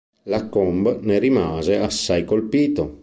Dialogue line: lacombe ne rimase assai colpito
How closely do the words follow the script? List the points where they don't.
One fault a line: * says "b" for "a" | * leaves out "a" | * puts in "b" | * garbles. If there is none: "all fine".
all fine